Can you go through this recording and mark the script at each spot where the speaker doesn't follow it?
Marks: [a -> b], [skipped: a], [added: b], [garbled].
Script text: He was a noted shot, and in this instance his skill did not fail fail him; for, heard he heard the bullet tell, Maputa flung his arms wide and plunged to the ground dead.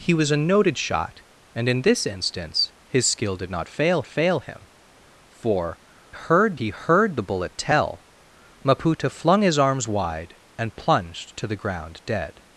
He was a noted shot, and in this instance his skill did not fail fail him; for, heard he heard the bullet tell, Maputa flung his arms wide and plunged to the ground dead.